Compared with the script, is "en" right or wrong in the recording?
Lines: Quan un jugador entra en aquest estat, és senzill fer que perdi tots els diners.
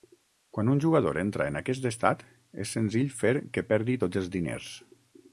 right